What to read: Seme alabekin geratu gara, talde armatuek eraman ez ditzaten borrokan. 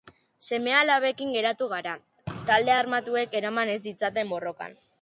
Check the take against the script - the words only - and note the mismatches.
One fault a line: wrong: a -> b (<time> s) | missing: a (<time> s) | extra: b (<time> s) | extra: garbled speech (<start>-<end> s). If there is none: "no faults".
no faults